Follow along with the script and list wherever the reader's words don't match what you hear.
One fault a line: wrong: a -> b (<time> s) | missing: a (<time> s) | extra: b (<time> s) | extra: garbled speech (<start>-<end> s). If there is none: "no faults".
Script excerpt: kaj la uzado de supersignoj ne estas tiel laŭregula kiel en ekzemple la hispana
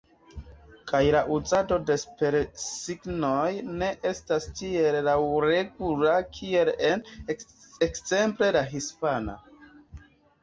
no faults